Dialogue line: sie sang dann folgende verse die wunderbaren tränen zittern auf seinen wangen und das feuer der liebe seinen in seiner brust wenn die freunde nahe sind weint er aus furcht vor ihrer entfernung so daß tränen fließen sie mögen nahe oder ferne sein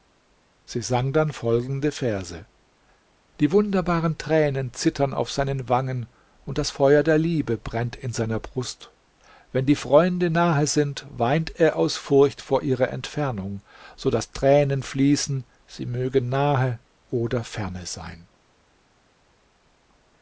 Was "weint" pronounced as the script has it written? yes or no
yes